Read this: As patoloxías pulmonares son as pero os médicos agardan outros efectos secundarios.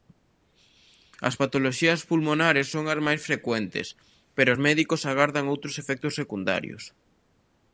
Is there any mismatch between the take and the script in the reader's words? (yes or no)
yes